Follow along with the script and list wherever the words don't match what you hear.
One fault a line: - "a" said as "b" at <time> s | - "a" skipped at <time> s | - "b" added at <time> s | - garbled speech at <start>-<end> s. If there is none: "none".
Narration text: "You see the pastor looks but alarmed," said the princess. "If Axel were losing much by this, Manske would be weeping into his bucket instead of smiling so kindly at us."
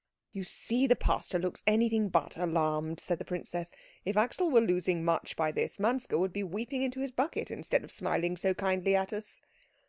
- "anything" added at 1.7 s